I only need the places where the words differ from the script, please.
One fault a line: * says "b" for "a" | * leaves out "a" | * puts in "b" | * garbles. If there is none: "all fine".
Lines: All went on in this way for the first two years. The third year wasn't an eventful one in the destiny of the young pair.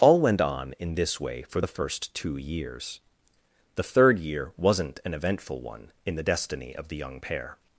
all fine